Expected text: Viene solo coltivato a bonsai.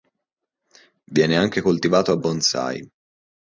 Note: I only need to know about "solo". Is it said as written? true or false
false